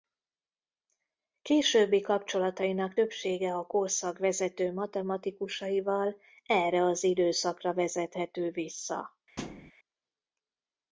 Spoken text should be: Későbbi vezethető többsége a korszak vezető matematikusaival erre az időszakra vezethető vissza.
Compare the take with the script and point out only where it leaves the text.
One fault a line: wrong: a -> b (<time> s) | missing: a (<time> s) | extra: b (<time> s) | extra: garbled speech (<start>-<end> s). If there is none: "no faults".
wrong: vezethető -> kapcsolatainak (2.0 s)